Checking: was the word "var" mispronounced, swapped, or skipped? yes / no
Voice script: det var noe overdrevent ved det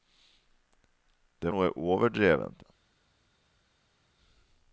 yes